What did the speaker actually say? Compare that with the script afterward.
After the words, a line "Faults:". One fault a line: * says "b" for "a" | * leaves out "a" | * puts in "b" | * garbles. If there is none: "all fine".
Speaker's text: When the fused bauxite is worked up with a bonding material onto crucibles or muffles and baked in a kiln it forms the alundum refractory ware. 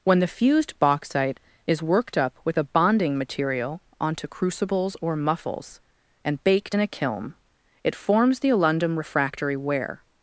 When the fused bauxite is worked up with a bonding material onto crucibles or muffles and baked in a kiln it forms the alundum refractory ware.
Faults:
all fine